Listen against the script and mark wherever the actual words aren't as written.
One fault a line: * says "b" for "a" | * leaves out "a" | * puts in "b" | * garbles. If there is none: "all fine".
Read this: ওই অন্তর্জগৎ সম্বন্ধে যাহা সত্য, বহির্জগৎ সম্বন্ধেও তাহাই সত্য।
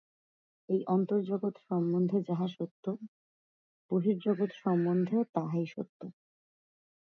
* says "এই" for "ওই"